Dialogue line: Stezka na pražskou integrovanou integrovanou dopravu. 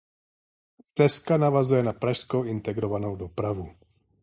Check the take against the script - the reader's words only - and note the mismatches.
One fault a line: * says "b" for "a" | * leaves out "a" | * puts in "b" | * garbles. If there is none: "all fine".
* puts in "navazuje"
* leaves out "integrovanou"